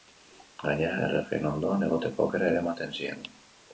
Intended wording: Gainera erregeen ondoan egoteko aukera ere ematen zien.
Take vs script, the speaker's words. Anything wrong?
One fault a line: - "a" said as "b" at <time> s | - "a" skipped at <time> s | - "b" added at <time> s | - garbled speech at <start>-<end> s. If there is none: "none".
none